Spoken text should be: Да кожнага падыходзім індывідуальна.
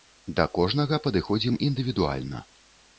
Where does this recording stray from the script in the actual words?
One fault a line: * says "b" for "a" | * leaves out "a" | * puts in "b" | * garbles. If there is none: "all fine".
all fine